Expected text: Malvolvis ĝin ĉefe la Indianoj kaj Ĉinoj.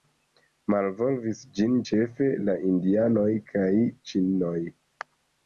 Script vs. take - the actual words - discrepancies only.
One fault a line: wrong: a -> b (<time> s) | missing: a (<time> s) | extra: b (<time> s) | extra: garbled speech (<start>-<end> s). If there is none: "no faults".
no faults